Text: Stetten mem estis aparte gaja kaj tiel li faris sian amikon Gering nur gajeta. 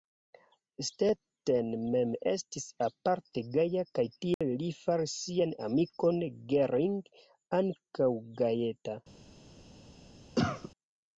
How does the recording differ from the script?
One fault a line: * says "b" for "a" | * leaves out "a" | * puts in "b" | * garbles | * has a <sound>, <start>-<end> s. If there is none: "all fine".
* has a dropout, 4.3-4.4 s
* says "ankaŭ" for "nur"
* has a cough, 10.4-10.7 s